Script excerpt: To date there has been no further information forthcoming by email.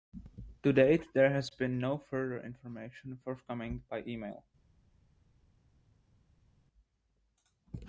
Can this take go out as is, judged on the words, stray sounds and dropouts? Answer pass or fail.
pass